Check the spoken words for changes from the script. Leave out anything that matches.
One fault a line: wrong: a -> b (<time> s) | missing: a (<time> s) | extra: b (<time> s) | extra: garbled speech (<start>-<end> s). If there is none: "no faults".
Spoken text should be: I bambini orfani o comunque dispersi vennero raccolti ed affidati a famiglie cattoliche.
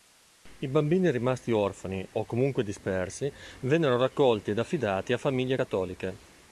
extra: rimasti (1.1 s)